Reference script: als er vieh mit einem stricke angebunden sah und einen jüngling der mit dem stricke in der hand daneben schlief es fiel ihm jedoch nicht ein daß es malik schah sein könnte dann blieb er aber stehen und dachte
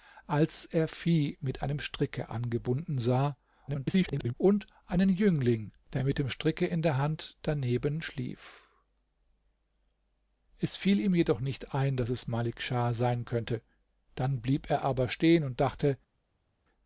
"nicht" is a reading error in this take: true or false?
false